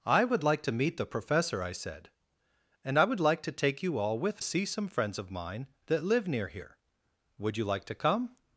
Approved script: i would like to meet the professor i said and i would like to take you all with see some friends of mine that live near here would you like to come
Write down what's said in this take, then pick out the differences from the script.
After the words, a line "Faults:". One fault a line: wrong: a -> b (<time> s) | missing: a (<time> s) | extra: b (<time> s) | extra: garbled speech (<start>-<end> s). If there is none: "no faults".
i would like to meet the professor i said and i would like to take you all with see some friends of mine that live near here would you like to come
Faults:
no faults